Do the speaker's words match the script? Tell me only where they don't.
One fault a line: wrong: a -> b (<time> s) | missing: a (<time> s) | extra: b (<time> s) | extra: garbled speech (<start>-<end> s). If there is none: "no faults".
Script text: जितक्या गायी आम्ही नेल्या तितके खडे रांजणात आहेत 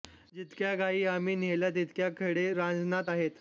no faults